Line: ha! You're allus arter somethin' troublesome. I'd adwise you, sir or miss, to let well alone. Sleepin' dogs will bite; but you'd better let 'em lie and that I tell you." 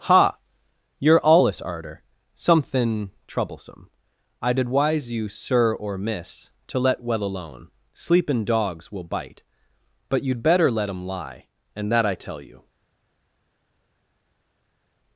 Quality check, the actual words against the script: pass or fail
pass